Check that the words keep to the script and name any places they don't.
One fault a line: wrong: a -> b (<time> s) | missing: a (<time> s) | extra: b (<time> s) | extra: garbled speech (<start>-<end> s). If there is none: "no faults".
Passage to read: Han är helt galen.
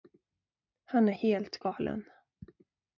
no faults